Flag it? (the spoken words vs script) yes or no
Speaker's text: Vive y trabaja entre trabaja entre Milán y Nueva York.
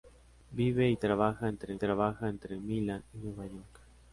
no